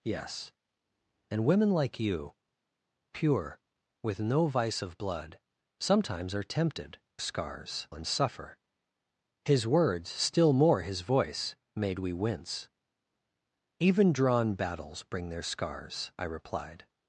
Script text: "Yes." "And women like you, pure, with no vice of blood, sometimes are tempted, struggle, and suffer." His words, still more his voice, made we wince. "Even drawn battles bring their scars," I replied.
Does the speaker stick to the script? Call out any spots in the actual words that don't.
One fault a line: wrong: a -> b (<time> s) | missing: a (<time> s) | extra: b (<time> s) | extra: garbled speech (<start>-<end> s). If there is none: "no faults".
wrong: struggle -> scars (7.2 s)